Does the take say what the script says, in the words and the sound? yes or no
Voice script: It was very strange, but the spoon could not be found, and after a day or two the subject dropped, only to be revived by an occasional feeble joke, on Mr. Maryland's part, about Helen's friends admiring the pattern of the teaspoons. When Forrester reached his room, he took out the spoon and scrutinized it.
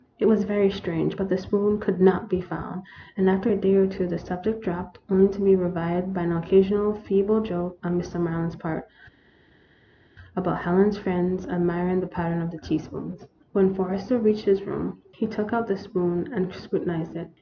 yes